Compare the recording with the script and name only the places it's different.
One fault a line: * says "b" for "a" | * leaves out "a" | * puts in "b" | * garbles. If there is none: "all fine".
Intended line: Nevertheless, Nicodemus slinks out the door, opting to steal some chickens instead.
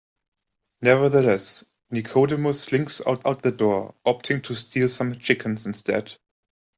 * puts in "out"